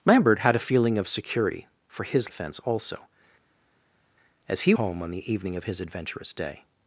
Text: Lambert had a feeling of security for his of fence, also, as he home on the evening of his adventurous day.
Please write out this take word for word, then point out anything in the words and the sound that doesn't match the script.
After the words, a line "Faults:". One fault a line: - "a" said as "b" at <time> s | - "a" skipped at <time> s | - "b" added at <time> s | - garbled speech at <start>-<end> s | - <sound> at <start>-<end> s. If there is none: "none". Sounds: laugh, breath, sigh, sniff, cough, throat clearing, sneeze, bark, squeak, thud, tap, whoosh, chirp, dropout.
Lambert had a feeling of security for his of fence, also, as he home on the evening of his adventurous day.
Faults:
none